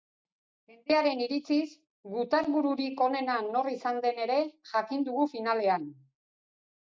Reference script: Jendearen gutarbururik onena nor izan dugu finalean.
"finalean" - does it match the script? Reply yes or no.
yes